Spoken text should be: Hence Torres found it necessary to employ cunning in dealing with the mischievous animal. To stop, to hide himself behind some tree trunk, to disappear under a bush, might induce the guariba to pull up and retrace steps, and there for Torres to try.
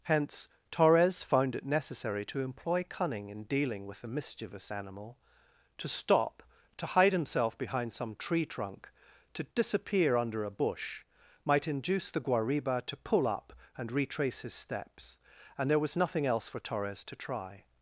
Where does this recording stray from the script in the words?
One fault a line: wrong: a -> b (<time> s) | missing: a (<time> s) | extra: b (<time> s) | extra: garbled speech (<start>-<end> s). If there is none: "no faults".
extra: his (14.4 s)
extra: was nothing else (15.8 s)